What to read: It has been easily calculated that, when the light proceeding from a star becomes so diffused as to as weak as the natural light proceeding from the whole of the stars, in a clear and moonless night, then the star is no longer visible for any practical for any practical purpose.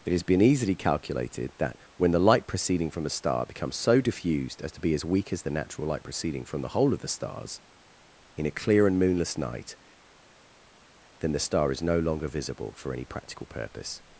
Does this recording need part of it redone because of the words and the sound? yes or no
yes